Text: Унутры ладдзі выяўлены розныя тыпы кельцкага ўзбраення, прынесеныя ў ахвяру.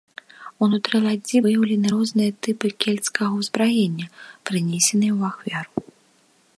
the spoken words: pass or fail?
pass